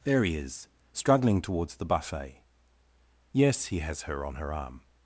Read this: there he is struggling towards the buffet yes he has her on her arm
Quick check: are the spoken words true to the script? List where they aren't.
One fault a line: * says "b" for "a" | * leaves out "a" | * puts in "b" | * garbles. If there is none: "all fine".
all fine